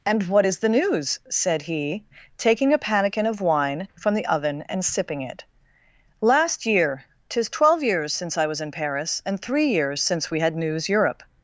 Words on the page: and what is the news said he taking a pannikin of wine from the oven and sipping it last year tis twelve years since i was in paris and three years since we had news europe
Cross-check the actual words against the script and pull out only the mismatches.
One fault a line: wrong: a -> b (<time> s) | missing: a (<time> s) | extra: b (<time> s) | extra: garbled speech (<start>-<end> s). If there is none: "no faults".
no faults